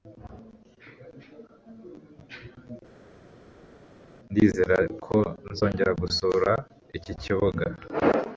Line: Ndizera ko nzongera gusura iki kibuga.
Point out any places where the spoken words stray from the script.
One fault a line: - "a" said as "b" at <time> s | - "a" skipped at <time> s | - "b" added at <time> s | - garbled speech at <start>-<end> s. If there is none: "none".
none